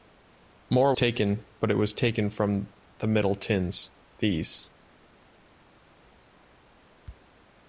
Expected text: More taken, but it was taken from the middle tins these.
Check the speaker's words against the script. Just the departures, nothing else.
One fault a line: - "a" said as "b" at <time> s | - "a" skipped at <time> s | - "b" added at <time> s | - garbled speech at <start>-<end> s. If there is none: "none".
none